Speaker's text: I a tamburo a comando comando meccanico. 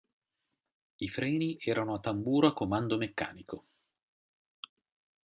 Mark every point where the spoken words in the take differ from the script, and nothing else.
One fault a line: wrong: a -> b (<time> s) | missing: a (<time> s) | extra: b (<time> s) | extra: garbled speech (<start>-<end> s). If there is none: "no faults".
extra: freni erano (1.1 s)
missing: comando (3.0 s)